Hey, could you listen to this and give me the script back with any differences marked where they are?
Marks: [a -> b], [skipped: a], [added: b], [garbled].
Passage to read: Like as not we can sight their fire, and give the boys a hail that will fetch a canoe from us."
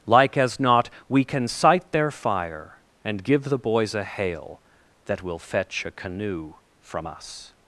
Like as not we can sight their fire, and give the boys a hail that will fetch a canoe from us."